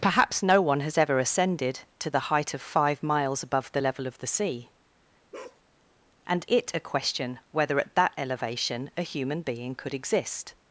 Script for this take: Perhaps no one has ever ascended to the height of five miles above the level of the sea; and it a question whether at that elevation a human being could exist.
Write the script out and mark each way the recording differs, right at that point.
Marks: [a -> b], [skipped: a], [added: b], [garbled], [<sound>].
Perhaps no one has ever ascended to the height of five miles above the level of the sea; [bark] and it a question whether at that elevation a human being could exist.